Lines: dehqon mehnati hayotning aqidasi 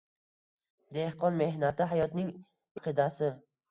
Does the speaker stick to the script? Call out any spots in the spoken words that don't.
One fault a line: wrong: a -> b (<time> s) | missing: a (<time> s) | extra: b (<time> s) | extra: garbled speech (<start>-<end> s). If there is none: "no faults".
no faults